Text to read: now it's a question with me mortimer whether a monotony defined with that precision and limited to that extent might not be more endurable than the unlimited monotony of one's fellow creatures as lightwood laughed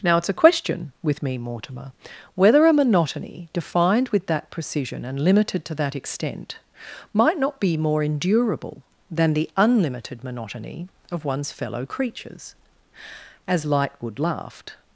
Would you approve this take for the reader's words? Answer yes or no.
yes